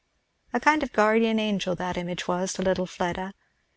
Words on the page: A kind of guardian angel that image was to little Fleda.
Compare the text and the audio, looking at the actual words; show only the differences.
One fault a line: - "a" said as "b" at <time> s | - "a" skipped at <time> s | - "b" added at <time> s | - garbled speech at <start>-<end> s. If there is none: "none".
none